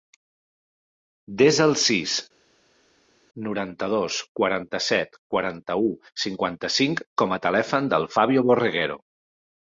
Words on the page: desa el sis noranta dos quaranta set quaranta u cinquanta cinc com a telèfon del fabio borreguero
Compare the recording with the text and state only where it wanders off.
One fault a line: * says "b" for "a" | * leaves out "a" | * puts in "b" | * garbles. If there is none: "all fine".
all fine